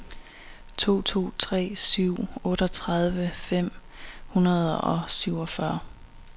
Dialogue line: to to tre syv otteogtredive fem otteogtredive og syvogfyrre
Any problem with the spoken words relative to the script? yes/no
yes